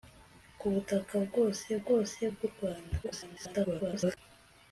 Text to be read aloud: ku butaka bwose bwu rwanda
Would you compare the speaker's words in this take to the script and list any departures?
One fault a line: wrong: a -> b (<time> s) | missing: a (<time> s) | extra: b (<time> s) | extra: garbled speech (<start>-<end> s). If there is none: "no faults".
extra: bwose (1.8 s)
extra: garbled speech (3.0-4.2 s)